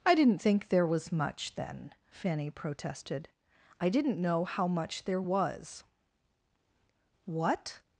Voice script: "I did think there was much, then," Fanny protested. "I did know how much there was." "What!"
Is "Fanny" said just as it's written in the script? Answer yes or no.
yes